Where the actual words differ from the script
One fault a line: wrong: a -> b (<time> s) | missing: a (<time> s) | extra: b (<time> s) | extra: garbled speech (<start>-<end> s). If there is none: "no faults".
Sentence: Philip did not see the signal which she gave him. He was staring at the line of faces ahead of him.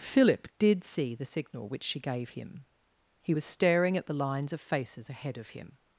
missing: not (0.8 s)
wrong: line -> lines (4.1 s)